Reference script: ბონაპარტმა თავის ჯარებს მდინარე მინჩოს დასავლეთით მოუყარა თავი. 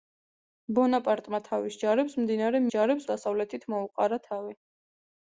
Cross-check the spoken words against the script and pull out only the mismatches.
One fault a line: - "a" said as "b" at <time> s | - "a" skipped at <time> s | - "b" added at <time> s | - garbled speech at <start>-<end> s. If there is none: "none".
- "მინჩოს" said as "ჯარებს" at 2.7 s